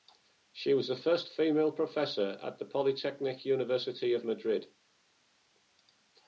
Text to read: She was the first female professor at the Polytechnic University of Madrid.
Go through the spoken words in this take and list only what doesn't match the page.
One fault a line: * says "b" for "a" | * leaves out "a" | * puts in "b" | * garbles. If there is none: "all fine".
all fine